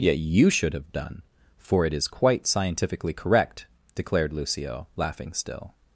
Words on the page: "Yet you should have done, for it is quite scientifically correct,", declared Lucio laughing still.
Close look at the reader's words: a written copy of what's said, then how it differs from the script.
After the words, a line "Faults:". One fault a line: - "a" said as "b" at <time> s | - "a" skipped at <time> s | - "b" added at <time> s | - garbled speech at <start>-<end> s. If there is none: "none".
"Yet you should have done, for it is quite scientifically correct,", declared Lucio laughing still.
Faults:
none